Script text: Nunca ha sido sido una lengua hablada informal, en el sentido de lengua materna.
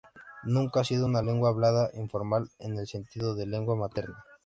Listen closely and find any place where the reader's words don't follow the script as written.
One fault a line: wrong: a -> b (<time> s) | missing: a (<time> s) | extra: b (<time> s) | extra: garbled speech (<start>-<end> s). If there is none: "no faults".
missing: sido (1.0 s)